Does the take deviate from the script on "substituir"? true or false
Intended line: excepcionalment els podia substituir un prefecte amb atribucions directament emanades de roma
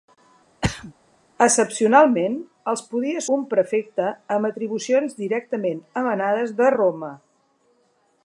true